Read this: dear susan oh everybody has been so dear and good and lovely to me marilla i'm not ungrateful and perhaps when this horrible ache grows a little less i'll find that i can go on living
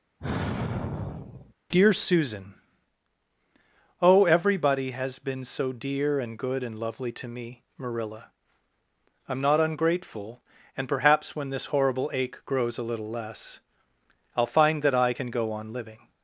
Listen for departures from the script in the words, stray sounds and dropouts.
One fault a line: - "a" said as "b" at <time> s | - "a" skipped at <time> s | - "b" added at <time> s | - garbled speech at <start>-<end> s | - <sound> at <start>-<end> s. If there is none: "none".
- sigh at 0.2-1.5 s